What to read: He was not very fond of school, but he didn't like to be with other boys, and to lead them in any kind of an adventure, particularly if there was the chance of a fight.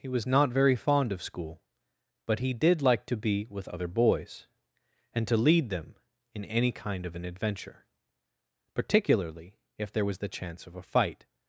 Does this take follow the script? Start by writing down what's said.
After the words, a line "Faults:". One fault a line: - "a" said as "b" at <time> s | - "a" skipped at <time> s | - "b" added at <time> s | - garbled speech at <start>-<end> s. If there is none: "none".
He was not very fond of school, but he did like to be with other boys, and to lead them in any kind of an adventure, particularly if there was the chance of a fight.
Faults:
- "didn't" said as "did" at 2.5 s